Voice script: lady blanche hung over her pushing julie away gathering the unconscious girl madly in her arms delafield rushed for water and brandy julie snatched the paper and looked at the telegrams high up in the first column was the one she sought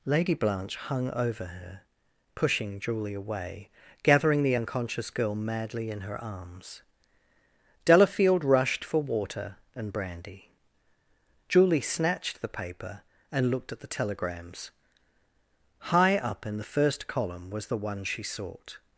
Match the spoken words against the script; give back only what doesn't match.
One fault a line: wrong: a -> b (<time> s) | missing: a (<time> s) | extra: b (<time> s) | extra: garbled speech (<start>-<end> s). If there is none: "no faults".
no faults